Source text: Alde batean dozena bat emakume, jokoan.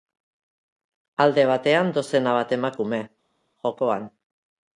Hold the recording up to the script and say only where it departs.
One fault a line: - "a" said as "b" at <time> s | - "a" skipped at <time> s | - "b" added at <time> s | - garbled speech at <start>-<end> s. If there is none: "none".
none